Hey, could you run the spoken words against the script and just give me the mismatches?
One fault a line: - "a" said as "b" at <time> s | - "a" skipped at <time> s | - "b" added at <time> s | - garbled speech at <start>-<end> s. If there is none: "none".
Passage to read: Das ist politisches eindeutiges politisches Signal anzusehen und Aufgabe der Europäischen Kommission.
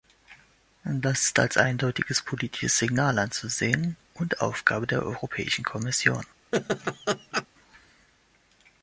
- "politisches" said as "als" at 1.4 s